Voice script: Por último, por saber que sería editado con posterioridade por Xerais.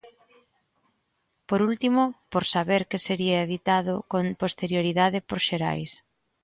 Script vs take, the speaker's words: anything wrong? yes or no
no